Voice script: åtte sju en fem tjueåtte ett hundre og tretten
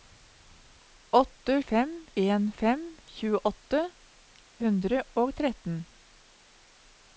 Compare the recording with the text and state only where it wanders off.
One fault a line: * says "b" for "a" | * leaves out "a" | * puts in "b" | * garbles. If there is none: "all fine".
* says "fem" for "sju"
* leaves out "ett"